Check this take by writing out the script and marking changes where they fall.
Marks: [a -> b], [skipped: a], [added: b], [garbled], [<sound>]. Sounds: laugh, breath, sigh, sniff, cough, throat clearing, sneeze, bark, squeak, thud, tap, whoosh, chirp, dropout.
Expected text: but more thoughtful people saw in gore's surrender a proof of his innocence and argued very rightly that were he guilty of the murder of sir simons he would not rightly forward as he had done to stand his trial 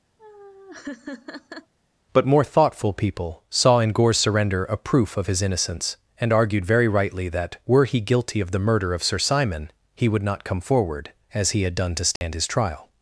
[laugh] but more thoughtful people saw in gore's surrender a proof of his innocence and argued very rightly that were he guilty of the murder of sir [simons -> simon] he would not [rightly -> come] forward as he had done to stand [dropout] his trial